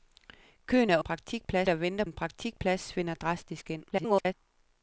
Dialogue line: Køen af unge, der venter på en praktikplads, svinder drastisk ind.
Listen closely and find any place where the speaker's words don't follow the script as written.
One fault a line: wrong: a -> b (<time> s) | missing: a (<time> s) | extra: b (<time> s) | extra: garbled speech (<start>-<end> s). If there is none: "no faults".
wrong: unge -> praktikplads (1.0 s)
missing: på (2.0 s)
extra: garbled speech (3.9-4.3 s)